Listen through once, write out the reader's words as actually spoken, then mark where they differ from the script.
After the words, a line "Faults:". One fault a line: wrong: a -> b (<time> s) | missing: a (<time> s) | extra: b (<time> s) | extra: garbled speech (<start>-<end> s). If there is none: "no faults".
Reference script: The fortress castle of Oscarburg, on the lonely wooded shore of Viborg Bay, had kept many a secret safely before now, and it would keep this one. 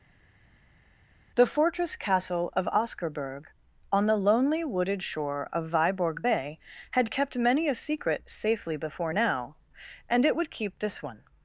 The fortress castle of Oscarburg, on the lonely wooded shore of Viborg Bay, had kept many a secret safely before now, and it would keep this one.
Faults:
no faults